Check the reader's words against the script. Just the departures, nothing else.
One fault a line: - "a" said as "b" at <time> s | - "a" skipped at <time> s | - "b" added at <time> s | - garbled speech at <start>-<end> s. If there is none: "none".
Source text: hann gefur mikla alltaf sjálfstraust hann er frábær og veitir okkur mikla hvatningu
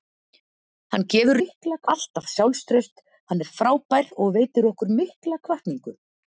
none